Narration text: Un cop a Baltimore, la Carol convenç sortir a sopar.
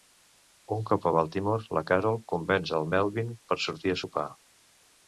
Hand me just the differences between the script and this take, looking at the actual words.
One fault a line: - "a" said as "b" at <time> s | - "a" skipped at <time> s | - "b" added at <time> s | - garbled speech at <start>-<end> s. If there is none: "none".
- "el Melvin per" added at 2.8 s